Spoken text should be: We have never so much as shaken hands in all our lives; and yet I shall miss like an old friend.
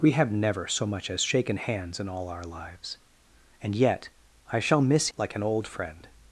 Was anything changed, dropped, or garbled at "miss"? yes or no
no